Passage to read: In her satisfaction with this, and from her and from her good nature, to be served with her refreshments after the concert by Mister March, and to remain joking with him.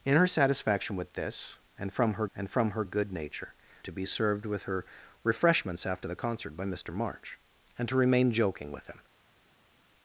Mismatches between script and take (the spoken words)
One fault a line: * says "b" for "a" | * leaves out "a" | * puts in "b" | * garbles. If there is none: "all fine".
all fine